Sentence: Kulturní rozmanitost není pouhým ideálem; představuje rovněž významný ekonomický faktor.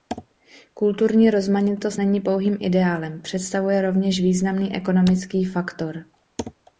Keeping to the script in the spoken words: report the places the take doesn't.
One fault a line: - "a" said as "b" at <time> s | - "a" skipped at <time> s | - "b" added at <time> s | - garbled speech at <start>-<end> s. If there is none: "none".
none